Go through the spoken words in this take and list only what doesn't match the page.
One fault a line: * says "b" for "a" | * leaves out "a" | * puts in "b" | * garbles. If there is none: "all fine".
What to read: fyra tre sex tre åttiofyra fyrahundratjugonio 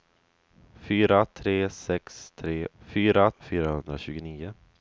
* says "fyra" for "åttiofyra"